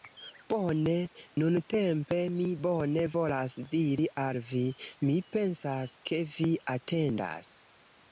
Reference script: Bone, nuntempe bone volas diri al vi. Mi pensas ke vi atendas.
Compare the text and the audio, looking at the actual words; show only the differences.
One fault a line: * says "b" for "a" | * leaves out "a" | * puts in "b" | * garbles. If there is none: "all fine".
* puts in "mi"